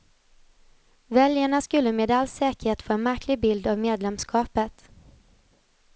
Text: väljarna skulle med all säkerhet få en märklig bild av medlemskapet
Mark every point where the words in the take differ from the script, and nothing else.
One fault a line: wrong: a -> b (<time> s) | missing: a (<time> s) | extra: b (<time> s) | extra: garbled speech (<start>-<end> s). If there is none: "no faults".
no faults